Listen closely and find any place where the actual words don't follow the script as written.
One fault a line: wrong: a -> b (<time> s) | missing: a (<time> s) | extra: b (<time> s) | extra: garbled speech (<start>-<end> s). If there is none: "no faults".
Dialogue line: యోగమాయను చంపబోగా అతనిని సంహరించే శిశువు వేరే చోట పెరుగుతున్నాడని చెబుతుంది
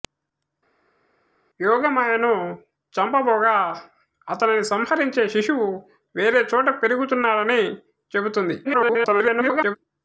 extra: garbled speech (8.6-9.8 s)